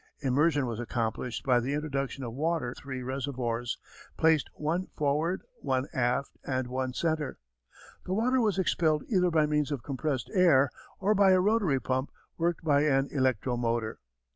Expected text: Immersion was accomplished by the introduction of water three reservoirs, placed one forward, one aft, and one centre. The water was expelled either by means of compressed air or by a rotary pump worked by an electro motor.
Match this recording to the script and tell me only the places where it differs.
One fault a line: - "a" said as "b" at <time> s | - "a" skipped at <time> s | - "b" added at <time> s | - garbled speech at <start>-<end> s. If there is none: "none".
none